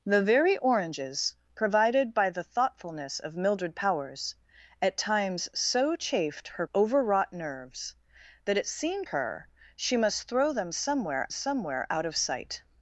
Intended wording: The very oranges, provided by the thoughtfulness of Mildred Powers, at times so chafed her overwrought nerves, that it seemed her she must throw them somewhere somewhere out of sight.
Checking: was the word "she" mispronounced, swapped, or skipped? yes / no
no